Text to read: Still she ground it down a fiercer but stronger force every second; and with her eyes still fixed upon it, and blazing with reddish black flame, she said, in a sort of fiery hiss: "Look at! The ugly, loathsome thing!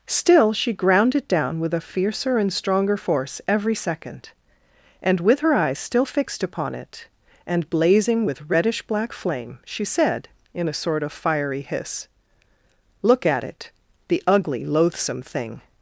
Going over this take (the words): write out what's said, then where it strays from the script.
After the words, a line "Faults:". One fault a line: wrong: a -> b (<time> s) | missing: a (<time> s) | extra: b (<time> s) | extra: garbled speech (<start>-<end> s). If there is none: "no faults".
Still she ground it down with a fiercer and stronger force every second; and with her eyes still fixed upon it, and blazing with reddish black flame, she said, in a sort of fiery hiss: "Look at it! The ugly, loathsome thing!
Faults:
extra: with (1.6 s)
wrong: but -> and (2.4 s)
extra: it (13.4 s)